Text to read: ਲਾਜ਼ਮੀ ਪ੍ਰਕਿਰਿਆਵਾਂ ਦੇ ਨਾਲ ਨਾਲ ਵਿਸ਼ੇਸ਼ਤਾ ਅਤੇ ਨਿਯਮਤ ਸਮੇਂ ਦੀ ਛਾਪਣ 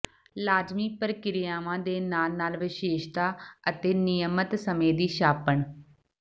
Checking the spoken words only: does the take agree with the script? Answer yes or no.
yes